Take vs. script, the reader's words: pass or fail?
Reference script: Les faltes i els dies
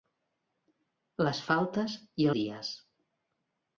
fail